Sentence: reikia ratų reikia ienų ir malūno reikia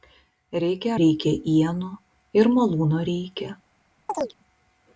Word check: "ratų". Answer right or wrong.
wrong